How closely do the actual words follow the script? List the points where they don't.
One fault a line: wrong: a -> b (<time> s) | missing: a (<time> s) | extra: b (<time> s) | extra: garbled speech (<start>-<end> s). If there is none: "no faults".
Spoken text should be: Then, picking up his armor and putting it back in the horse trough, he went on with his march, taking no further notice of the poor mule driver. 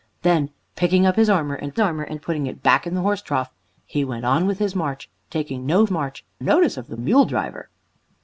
extra: armor and (1.8 s)
wrong: further -> march (5.9 s)
missing: poor (6.9 s)